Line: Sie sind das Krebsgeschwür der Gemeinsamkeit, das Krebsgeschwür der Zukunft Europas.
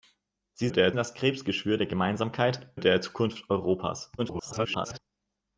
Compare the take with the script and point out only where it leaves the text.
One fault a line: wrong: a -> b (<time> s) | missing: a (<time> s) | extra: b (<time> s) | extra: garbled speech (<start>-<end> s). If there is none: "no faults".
wrong: sind -> der (0.7 s)
missing: das Krebsgeschwür (2.7 s)
extra: garbled speech (4.2-5.0 s)